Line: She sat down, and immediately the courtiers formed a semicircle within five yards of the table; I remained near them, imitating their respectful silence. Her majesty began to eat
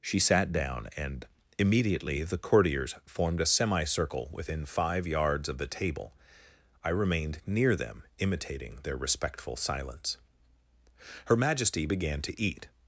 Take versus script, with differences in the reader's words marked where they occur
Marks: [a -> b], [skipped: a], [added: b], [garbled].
She sat down, and immediately the courtiers formed a semicircle within five yards of the table; I remained near them, imitating their respectful silence. Her majesty began to eat